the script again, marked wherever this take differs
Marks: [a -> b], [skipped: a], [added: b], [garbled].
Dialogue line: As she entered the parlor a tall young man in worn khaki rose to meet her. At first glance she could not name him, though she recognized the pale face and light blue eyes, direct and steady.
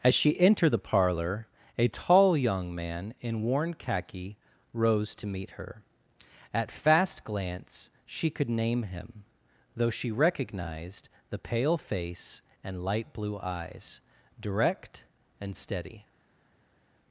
As she entered the parlor a tall young man in worn khaki rose to meet her. At [first -> fast] glance she could [skipped: not] name him, though she recognized the pale face and light blue eyes, direct and steady.